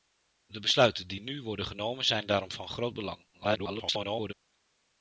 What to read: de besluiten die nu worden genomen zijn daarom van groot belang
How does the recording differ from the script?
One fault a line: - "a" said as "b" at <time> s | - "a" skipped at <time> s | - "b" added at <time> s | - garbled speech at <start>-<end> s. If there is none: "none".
- garbled speech at 3.3-4.3 s